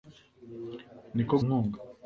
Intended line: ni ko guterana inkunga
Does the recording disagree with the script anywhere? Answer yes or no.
yes